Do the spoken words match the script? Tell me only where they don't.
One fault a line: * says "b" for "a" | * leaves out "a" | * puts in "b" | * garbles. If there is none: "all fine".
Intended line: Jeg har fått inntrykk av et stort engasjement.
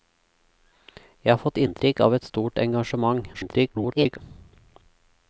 * garbles